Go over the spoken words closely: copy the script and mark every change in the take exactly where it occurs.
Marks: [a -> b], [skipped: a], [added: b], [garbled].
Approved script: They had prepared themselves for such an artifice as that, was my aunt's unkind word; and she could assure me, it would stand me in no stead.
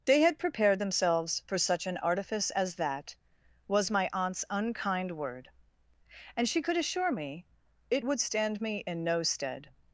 They had prepared themselves for such an artifice as that, was my aunt's unkind word; and she could assure me, it would stand me in no stead.